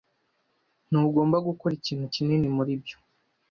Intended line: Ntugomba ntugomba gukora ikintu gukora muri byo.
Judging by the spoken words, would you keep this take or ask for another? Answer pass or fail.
fail